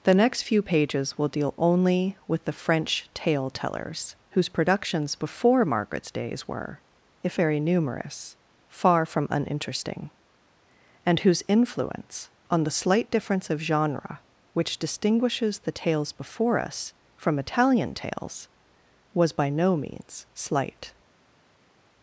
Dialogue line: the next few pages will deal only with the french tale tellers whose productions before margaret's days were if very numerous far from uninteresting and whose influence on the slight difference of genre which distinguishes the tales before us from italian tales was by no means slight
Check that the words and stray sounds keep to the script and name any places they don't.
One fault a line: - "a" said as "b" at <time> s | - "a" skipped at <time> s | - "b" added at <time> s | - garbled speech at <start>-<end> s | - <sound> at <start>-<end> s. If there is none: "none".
none